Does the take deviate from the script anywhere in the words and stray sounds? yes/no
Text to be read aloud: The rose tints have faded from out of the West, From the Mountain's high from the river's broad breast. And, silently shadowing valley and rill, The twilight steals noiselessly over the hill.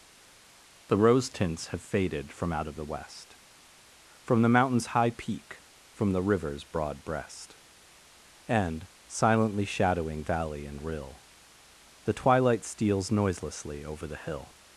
yes